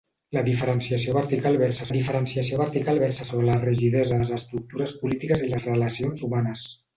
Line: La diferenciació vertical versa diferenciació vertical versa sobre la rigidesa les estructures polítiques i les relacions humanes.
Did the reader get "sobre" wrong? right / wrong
right